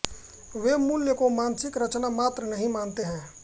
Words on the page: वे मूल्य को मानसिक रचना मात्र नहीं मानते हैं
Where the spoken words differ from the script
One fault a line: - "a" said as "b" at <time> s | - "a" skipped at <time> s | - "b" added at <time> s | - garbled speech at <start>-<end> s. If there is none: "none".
none